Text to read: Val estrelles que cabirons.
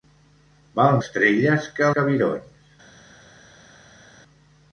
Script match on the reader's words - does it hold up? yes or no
yes